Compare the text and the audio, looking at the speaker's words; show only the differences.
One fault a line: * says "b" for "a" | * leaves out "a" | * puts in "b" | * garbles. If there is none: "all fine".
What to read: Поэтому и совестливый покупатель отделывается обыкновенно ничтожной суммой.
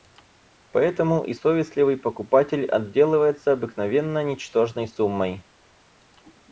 all fine